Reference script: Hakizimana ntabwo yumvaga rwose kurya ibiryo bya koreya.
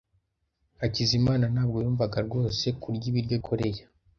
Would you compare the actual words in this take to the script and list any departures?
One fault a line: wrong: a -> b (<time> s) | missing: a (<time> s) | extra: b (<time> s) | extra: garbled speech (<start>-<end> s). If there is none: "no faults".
missing: bya (3.4 s)